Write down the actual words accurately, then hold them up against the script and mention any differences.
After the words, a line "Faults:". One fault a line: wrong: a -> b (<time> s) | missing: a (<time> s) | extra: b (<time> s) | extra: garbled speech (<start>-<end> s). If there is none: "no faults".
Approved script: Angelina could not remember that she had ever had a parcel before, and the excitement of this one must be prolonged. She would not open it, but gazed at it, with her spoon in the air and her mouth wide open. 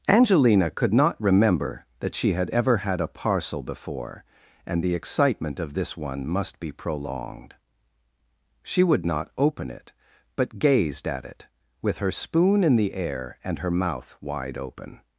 Angelina could not remember that she had ever had a parcel before, and the excitement of this one must be prolonged. She would not open it, but gazed at it, with her spoon in the air and her mouth wide open.
Faults:
no faults